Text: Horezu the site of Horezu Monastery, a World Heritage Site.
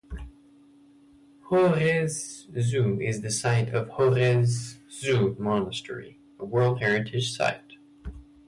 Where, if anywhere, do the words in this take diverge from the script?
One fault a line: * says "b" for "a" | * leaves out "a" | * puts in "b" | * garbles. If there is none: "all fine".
* puts in "is"